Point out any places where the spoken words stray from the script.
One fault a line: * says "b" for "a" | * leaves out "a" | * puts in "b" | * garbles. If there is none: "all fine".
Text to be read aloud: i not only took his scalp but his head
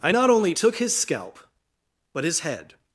all fine